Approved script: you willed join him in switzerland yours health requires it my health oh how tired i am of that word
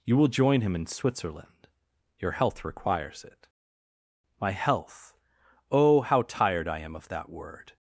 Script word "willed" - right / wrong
wrong